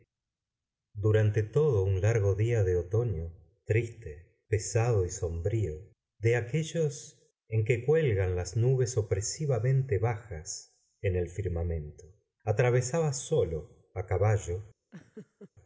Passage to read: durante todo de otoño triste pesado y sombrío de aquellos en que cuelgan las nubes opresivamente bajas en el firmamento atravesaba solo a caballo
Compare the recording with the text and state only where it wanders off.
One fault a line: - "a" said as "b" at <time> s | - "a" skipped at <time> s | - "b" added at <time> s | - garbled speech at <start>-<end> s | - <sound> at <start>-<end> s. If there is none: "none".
- "un largo día" added at 1.8 s
- laugh at 14.9-15.5 s